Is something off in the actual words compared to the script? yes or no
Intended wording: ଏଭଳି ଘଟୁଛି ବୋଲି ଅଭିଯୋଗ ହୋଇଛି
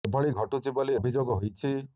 no